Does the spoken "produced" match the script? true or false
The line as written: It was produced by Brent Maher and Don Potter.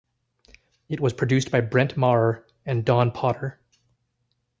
true